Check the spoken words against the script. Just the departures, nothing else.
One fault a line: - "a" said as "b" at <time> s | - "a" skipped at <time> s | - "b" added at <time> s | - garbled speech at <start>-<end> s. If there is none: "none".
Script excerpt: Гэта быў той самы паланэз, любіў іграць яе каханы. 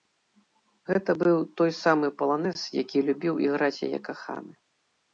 - "які" added at 2.8 s